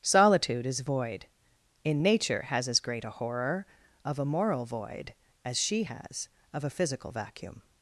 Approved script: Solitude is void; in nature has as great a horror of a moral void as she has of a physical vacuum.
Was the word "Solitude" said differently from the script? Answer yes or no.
no